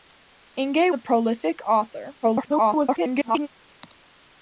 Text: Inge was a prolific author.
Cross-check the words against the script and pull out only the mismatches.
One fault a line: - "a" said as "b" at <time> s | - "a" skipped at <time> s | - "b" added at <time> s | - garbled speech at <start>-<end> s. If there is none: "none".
- "was" skipped at 0.9 s
- garbled speech at 2.2-3.5 s